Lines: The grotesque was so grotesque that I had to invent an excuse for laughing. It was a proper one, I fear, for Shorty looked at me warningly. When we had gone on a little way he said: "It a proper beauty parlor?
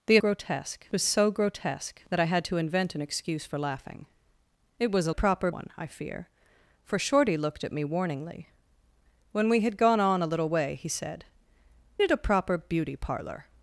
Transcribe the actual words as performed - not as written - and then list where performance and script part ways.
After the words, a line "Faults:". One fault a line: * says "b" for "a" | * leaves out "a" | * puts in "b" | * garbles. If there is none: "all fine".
The grotesque was so grotesque that I had to invent an excuse for laughing. It was a proper one, I fear, for Shorty looked at me warningly. When we had gone on a little way he said: "It a proper beauty parlor?
Faults:
all fine